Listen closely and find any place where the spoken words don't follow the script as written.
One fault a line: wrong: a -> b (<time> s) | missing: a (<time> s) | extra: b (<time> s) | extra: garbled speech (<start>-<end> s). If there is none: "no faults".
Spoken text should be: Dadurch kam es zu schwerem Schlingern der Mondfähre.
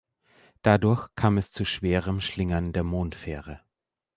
no faults